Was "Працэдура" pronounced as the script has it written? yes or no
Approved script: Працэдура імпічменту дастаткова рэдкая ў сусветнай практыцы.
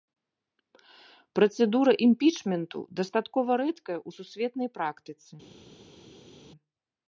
yes